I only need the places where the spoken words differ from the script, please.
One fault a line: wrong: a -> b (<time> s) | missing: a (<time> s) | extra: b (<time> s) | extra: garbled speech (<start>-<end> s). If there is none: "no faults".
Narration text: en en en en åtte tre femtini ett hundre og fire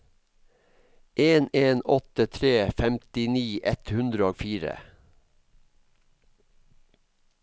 missing: en en (1.8 s)